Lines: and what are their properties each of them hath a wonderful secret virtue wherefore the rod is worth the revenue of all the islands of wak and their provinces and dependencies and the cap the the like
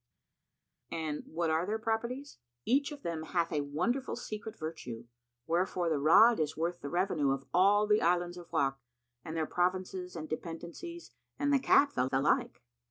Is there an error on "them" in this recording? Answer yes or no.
no